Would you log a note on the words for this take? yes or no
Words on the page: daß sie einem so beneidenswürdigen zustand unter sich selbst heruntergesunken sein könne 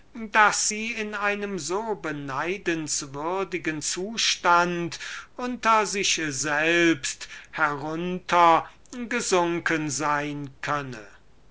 yes